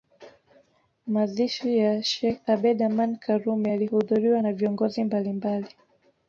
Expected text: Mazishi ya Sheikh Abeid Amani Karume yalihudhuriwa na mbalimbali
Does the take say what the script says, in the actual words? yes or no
no